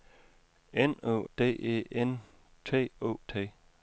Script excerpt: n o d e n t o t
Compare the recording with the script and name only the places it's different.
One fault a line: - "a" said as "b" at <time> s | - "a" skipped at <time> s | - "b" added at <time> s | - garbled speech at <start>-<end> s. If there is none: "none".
none